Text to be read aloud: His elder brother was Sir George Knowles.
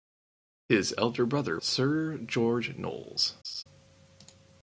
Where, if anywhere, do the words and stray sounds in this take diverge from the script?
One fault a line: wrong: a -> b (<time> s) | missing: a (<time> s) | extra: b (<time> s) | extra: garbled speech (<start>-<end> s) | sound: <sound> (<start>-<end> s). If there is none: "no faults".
missing: was (1.6 s)
sound: laugh (3.4-3.6 s)